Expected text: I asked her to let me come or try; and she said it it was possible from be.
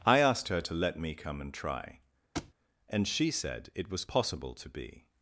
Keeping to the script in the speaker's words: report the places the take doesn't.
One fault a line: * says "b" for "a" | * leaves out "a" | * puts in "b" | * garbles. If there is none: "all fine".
* says "and" for "or"
* leaves out "it"
* says "to" for "from"